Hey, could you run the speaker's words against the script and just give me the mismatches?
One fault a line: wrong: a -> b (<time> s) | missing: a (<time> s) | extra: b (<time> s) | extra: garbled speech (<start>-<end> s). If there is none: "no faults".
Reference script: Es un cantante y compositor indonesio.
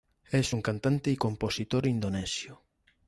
no faults